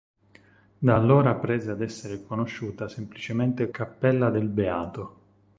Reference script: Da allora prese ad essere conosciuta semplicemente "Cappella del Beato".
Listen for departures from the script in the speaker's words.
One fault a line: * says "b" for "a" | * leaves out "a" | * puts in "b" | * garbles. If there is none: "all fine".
all fine